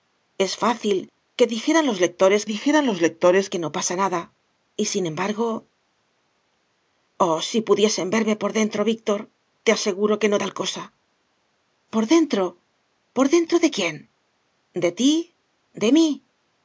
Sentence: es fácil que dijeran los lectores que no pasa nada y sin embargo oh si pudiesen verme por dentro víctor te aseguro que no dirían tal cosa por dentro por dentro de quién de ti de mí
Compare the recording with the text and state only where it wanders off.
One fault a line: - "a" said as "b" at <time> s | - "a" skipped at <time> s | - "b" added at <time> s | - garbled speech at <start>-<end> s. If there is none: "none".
- "dijeran los lectores" added at 2.5 s
- "dirían" skipped at 10.4 s